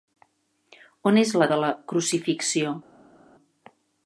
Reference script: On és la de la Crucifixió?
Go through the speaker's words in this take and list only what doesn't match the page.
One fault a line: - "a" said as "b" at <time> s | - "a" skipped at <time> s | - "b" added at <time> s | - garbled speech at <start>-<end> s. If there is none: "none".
none